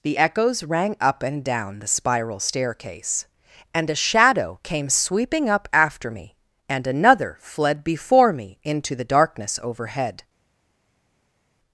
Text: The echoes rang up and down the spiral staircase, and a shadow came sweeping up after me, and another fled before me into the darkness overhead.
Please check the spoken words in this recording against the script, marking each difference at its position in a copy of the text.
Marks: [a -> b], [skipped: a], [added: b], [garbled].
The echoes rang up and down the spiral staircase, and a shadow came sweeping up after me, and another fled before me into the darkness overhead.